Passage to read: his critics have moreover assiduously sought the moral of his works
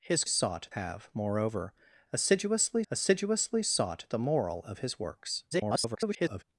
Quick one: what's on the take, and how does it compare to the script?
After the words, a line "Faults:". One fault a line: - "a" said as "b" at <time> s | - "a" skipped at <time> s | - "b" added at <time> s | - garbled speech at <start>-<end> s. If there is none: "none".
his sought have moreover assiduously assiduously sought the moral of his works [garbled]
Faults:
- "critics" said as "sought" at 0.2 s
- "assiduously" added at 2.9 s
- garbled speech at 5.5-6.4 s